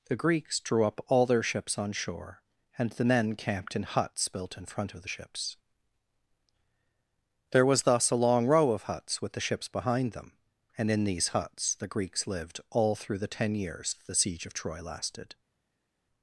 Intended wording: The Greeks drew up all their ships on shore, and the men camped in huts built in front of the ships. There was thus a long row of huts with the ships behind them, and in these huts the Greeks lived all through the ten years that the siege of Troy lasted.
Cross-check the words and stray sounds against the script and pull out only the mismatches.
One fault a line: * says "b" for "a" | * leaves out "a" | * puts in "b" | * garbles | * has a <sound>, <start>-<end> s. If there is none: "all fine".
* leaves out "that"